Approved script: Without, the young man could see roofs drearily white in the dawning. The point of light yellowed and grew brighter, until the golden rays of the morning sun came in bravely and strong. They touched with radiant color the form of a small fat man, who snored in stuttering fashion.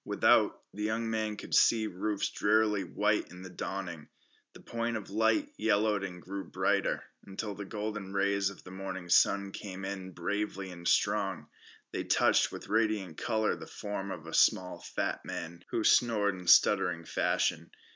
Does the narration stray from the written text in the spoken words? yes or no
no